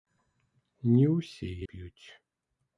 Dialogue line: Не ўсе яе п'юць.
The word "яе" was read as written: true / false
false